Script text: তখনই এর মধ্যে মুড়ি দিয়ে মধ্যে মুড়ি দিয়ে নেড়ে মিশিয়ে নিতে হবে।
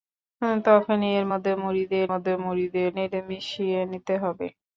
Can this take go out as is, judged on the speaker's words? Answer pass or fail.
pass